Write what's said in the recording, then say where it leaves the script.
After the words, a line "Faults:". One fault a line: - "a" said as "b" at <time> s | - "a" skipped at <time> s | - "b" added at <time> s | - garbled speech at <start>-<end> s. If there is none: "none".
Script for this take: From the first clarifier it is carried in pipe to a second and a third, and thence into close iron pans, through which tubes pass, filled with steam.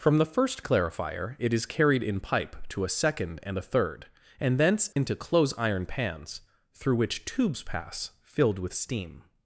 From the first clarifier it is carried in pipe to a second and a third, and thence into close iron pans, through which tubes pass, filled with steam.
Faults:
none